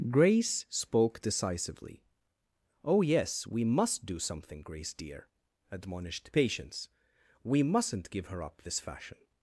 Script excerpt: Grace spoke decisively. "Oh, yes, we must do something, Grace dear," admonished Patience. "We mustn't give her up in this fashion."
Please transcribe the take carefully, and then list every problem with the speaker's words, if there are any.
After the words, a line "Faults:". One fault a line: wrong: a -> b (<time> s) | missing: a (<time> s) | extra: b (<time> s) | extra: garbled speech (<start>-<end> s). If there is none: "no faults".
Grace spoke decisively. "Oh, yes, we must do something, Grace dear," admonished Patience. "We mustn't give her up this fashion."
Faults:
missing: in (8.6 s)